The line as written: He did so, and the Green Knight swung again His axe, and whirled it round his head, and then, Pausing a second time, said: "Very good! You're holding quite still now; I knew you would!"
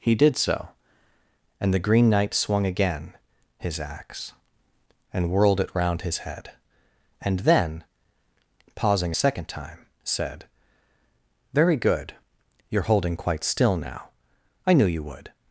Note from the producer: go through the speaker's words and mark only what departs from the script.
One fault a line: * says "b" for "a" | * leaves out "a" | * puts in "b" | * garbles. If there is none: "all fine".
all fine